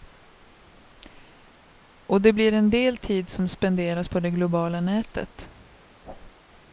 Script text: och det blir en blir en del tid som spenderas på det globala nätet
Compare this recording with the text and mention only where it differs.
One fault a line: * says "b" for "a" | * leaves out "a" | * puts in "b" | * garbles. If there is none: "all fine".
* leaves out "blir en"